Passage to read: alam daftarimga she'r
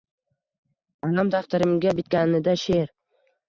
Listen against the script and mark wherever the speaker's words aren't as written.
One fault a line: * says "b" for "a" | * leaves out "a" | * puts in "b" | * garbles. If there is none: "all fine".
* puts in "bitganida"